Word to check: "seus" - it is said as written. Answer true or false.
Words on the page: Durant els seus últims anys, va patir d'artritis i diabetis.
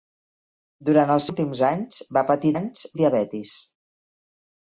false